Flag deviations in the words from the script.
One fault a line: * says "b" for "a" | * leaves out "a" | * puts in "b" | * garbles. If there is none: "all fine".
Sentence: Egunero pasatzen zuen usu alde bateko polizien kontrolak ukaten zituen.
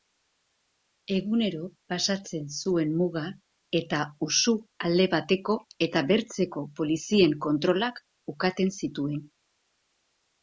* puts in "muga eta"
* puts in "eta bertzeko"